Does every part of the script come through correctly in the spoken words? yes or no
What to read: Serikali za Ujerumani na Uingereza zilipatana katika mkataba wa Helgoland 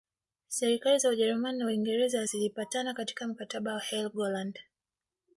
yes